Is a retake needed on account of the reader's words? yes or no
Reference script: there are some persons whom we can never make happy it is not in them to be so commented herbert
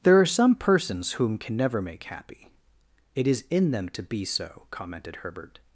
yes